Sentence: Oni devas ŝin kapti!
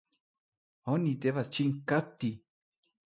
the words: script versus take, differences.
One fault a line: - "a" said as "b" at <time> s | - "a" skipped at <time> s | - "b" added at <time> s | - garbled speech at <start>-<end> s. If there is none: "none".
none